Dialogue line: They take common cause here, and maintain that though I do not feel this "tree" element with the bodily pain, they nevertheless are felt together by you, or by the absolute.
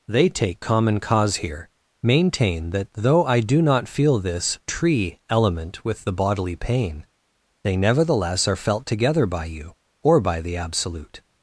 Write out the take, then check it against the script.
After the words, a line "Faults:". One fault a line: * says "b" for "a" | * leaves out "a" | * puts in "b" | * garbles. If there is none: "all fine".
They take common cause here, maintain that though I do not feel this "tree" element with the bodily pain, they nevertheless are felt together by you, or by the absolute.
Faults:
* leaves out "and"